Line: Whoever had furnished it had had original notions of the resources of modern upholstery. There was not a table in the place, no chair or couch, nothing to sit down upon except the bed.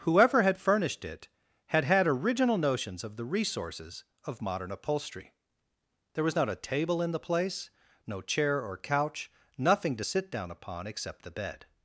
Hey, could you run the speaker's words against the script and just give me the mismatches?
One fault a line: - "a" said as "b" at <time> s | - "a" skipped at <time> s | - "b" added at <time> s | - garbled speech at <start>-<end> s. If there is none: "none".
none